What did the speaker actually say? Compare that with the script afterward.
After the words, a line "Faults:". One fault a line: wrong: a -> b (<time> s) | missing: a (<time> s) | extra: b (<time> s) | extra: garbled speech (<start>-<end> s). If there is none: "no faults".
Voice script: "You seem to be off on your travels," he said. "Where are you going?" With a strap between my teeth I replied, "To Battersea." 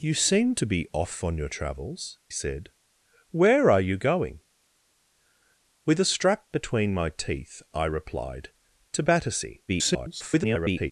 "You seem to be off on your travels," said. "Where are you going?" With a strap between my teeth I replied, "To Battersea." [garbled]
Faults:
missing: he (2.2 s)
extra: garbled speech (9.7-10.9 s)